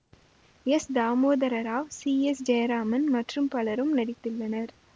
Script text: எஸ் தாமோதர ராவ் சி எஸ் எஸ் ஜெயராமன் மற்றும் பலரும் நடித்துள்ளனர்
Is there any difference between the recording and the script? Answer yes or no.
yes